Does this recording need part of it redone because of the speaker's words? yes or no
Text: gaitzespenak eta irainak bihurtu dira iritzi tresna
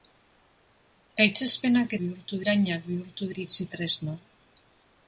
yes